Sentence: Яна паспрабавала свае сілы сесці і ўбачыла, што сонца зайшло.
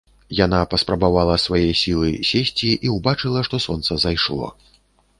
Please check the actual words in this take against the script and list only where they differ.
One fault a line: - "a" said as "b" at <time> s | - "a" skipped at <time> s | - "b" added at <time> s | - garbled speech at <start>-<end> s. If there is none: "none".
none